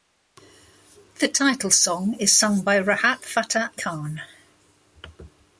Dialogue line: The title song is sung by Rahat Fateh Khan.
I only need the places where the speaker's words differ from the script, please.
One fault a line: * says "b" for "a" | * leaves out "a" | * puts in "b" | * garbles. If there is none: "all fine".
all fine